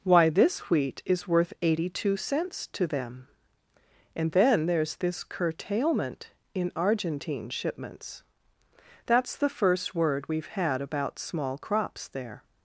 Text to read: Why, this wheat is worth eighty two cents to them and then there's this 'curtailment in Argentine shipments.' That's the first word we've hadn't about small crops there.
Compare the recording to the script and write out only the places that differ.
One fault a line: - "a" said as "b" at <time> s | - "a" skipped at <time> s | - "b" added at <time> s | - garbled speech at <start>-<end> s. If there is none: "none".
- "hadn't" said as "had" at 10.5 s